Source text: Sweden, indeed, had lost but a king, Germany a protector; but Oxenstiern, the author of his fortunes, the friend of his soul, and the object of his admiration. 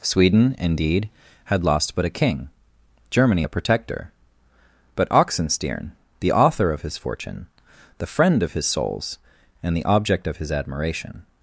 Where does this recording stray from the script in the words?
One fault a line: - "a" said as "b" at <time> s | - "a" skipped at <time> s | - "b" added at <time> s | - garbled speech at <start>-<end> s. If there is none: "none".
- "fortunes" said as "fortune" at 7.0 s
- "soul" said as "souls" at 8.6 s